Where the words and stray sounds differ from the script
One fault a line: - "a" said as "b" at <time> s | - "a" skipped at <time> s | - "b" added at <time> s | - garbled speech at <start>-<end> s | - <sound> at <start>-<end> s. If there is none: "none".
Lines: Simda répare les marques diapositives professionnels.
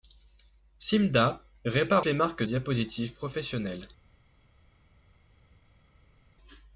none